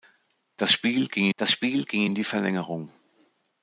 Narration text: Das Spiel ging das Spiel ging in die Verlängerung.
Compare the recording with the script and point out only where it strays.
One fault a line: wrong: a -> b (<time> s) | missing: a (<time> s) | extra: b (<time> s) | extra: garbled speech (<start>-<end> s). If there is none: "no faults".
no faults